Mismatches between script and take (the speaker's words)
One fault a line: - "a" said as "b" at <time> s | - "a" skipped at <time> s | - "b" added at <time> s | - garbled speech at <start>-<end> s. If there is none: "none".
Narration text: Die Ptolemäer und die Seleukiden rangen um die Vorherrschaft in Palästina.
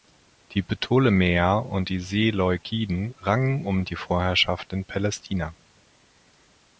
none